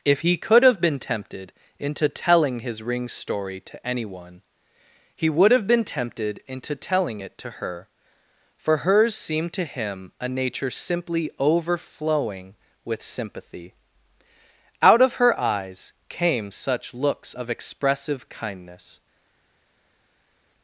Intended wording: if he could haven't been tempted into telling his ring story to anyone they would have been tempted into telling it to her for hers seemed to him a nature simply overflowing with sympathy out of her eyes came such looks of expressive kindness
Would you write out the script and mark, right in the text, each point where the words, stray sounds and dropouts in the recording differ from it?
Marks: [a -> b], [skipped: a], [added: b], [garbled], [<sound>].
if he could [haven't -> have] been tempted into telling his ring story to anyone [they -> he] would have been tempted into telling it to her for hers seemed to him a nature simply overflowing with sympathy out of her eyes came such looks of expressive kindness